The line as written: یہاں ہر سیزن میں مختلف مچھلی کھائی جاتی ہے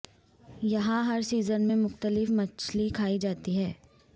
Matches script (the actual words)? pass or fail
pass